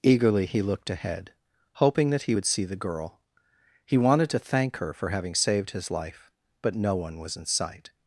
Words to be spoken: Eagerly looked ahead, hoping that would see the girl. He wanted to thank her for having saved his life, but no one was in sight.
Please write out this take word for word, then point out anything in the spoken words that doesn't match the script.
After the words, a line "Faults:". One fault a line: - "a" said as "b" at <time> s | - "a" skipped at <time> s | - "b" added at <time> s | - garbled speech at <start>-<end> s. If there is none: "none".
Eagerly he looked ahead, hoping that he would see the girl. He wanted to thank her for having saved his life, but no one was in sight.
Faults:
- "he" added at 0.5 s
- "he" added at 2.2 s